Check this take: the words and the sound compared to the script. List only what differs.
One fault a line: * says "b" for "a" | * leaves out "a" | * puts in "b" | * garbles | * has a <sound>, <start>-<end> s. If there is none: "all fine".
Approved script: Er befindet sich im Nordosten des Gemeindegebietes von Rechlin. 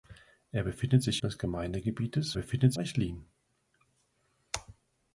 * leaves out "im Nordosten"
* says "befindet" for "von"